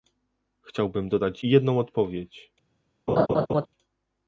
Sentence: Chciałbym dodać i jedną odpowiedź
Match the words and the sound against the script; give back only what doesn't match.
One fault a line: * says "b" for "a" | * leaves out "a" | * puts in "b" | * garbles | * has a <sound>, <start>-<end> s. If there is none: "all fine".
* has a laugh, 3.1-3.7 s